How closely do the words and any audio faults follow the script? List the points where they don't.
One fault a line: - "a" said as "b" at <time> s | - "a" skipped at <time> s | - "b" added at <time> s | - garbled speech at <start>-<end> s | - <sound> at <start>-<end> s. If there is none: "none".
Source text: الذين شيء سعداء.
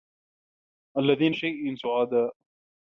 none